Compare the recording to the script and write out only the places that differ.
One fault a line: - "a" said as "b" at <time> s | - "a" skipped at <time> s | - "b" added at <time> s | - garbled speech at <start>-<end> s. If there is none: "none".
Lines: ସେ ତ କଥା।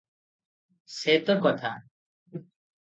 none